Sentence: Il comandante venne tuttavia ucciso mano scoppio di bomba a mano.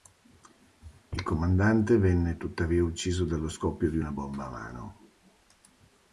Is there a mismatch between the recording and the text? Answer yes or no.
yes